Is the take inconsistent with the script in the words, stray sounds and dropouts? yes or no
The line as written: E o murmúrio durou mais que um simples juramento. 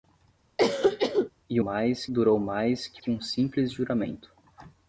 yes